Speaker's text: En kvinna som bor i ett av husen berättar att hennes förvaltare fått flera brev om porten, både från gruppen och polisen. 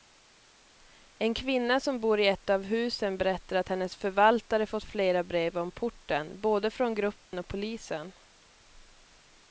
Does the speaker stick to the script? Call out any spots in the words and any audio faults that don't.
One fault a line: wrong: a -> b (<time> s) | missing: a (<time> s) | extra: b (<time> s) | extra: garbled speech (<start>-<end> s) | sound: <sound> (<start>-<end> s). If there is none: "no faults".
sound: dropout (7.3-7.3 s)